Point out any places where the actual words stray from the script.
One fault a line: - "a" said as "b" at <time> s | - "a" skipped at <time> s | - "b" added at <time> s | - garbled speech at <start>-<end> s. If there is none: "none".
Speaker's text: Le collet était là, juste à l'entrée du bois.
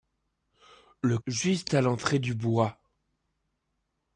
- "collet était là" skipped at 1.2 s